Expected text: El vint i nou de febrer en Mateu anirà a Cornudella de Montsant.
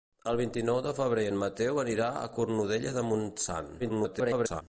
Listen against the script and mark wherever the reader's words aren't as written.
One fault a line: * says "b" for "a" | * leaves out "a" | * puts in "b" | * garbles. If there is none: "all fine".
* garbles